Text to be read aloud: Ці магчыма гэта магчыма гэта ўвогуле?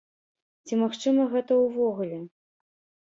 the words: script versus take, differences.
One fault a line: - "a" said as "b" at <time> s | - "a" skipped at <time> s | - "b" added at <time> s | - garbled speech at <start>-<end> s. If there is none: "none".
- "магчыма гэта" skipped at 1.6 s